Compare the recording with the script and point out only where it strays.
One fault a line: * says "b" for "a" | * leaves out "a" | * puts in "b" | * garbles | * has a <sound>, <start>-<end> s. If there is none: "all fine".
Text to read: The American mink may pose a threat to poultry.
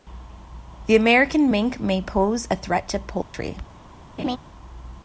* has a dropout, 3.2-3.3 s
* has a laugh, 4.2-4.4 s